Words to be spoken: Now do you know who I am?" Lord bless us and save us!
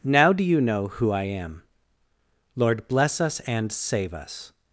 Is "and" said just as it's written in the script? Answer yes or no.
yes